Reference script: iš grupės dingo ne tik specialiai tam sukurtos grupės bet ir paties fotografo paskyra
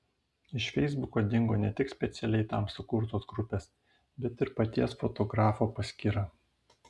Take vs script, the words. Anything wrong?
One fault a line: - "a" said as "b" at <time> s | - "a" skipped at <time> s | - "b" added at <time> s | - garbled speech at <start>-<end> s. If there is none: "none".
- "grupės" said as "feisbuko" at 0.8 s